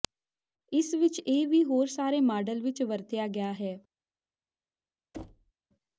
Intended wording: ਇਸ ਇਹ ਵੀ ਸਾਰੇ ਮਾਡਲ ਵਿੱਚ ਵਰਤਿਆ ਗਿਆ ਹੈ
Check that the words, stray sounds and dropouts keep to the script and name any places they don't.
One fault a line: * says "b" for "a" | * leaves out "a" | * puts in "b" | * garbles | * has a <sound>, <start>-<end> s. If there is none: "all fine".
* puts in "ਵਿਚ"
* puts in "ਹੋਰ"
* has a thud, 5.1-5.5 s